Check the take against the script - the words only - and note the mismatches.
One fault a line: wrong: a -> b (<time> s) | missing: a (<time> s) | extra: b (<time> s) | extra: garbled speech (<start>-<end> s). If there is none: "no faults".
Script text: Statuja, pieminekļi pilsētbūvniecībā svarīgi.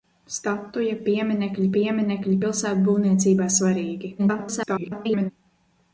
extra: pieminekļi (1.8 s)
extra: garbled speech (4.2-5.3 s)